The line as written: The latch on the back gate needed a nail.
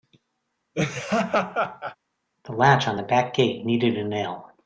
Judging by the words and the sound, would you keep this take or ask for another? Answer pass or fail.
fail